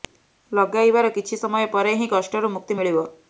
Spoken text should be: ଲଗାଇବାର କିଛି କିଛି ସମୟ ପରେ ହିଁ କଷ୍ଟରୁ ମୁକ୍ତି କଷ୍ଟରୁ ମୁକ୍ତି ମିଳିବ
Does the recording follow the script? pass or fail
fail